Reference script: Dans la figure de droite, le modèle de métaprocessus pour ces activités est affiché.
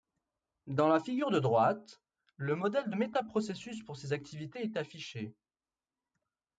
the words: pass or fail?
pass